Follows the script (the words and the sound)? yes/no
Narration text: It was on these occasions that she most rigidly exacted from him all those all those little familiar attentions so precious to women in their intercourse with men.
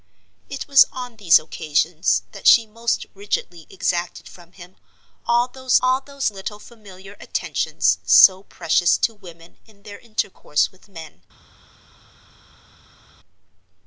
yes